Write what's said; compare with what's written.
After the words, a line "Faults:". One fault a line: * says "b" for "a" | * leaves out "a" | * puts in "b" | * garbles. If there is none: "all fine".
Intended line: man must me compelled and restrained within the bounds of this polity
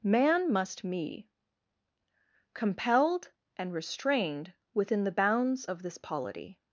man must me compelled and restrained within the bounds of this polity
Faults:
all fine